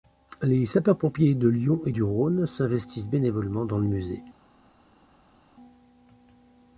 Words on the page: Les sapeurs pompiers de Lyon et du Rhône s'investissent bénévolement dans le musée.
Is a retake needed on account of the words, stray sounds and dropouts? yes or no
no